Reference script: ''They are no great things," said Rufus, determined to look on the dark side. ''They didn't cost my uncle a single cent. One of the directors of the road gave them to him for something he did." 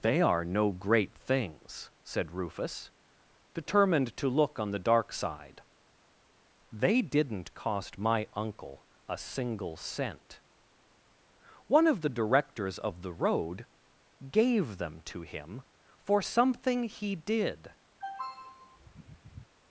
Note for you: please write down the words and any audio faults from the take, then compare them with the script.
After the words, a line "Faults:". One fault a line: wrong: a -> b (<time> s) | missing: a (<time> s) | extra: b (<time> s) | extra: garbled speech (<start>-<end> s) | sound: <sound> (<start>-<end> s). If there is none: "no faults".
''They are no great things," said Rufus, determined to look on the dark side. ''They didn't cost my uncle a single cent. One of the directors of the road gave them to him for something he did."
Faults:
sound: throat clearing (18.0-19.5 s)